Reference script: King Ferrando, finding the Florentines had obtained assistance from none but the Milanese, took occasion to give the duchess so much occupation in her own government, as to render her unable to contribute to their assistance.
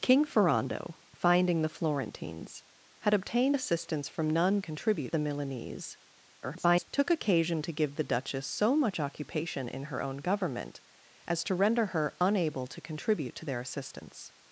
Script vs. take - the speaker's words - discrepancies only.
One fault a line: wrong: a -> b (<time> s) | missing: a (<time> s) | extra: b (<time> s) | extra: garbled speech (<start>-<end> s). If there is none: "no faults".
wrong: but -> contribute (4.6 s)
extra: garbled speech (6.4-6.9 s)